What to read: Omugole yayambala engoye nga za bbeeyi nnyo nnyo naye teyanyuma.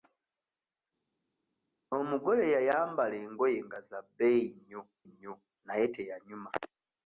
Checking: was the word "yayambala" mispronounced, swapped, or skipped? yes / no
no